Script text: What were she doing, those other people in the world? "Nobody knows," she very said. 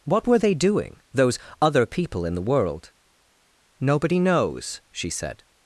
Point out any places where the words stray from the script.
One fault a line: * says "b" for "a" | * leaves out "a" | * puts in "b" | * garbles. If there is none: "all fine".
* says "they" for "she"
* leaves out "very"